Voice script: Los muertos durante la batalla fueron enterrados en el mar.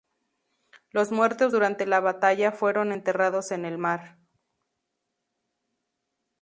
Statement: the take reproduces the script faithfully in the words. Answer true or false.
true